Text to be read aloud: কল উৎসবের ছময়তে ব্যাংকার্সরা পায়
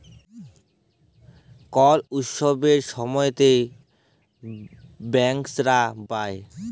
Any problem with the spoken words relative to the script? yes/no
no